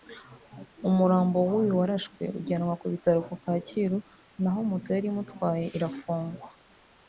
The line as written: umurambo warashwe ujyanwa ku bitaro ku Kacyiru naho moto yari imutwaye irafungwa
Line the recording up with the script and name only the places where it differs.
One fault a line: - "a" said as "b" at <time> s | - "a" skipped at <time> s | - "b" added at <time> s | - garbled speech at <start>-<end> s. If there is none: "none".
- "w'uyu" added at 1.5 s